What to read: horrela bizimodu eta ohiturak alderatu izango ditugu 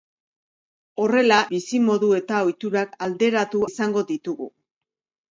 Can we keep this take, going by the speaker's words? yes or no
yes